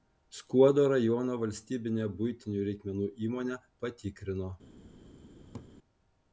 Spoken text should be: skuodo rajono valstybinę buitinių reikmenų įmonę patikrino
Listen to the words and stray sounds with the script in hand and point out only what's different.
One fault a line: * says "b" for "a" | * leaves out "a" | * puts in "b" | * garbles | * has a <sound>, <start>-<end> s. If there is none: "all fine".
* has a laugh, 5.5-5.7 s